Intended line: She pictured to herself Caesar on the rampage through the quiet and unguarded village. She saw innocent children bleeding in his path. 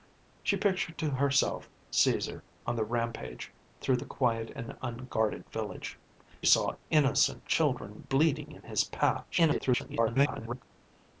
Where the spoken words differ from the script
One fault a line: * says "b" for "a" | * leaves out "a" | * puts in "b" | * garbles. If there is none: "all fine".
* leaves out "She"
* garbles